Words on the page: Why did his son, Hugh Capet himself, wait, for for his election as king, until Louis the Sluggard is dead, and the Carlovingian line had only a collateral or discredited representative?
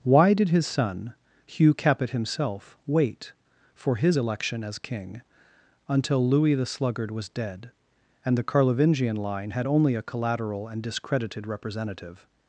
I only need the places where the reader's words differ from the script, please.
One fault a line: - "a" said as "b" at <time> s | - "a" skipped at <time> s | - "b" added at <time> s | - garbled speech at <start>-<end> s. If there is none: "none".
- "for" skipped at 4.0 s
- "is" said as "was" at 7.1 s
- "or" said as "and" at 10.7 s